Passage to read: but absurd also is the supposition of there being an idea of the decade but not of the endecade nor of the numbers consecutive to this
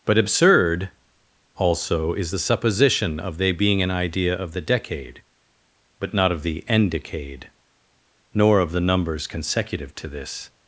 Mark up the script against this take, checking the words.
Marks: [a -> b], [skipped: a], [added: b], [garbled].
but absurd also is the supposition of [there -> they] being an idea of the decade but not of the endecade nor of the numbers consecutive to this